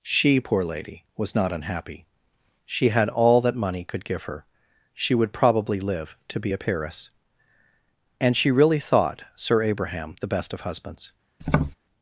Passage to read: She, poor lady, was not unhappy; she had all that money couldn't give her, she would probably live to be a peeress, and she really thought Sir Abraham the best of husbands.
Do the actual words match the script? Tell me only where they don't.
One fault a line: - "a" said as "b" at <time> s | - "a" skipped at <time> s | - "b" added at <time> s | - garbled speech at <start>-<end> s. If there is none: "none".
- "couldn't" said as "could" at 3.8 s